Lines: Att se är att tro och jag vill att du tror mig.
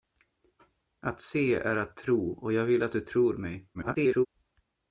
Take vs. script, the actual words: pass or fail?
fail